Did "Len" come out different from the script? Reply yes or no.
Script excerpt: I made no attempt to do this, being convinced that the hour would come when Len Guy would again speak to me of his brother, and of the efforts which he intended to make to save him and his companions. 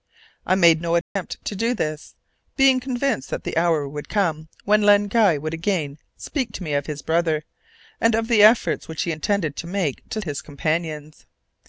no